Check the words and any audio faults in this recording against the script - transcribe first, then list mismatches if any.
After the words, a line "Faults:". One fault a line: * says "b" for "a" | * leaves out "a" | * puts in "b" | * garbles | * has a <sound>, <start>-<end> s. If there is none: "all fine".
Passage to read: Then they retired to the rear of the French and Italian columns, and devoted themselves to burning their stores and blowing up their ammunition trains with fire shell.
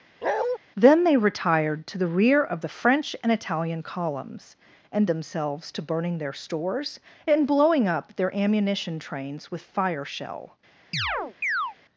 Then they retired to the rear of the French and Italian columns, and themselves to burning their stores and blowing up their ammunition trains with fire shell.
Faults:
* has a bark, 0.2-0.6 s
* leaves out "devoted"
* has a chirp, 10.9-11.8 s